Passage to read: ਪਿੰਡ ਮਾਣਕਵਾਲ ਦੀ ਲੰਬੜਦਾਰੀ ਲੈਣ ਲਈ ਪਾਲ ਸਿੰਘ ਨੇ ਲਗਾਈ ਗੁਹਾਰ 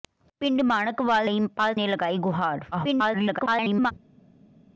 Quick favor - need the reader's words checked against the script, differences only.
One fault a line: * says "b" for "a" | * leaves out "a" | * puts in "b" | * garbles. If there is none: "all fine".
* leaves out "ਦੀ ਲੰਬੜਦਾਰੀ ਲੈਣ"
* leaves out "ਸਿੰਘ"
* garbles